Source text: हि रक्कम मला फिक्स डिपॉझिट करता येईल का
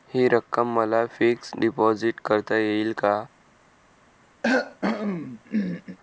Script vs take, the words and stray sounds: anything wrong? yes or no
yes